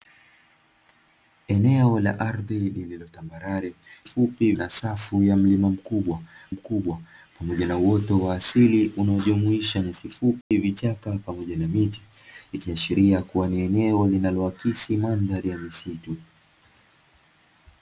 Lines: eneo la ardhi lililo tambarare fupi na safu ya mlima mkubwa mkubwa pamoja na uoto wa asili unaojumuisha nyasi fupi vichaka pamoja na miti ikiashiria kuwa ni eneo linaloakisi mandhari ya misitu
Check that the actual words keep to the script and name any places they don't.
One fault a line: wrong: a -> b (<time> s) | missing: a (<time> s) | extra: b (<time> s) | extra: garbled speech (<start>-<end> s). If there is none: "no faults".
no faults